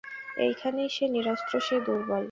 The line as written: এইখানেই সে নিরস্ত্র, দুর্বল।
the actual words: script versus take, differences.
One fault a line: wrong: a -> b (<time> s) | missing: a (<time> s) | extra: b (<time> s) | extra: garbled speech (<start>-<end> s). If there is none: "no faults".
extra: সে (1.6 s)